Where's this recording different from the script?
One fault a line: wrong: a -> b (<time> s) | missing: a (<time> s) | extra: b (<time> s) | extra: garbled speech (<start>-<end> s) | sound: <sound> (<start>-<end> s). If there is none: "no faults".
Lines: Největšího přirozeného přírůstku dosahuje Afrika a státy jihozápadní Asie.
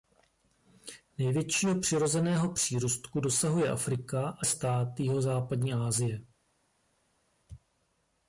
no faults